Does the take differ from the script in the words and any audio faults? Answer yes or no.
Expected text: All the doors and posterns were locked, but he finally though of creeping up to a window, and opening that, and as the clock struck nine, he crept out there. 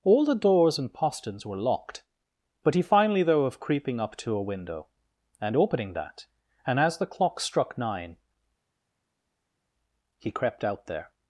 no